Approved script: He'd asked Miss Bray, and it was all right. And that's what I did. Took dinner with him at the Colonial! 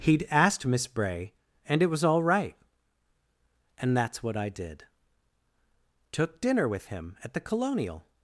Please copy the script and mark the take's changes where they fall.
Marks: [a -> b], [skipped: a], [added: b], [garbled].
He'd asked Miss Bray, and it was all right. And that's what I did. Took dinner with him at the Colonial!